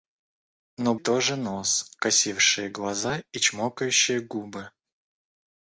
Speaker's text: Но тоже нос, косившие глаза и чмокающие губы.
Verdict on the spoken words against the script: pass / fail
pass